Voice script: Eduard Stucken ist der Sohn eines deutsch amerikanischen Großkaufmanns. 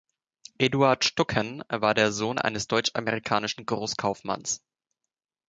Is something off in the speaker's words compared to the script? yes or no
yes